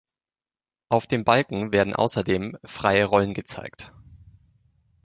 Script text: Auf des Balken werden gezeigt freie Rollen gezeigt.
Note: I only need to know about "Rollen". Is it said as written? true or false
true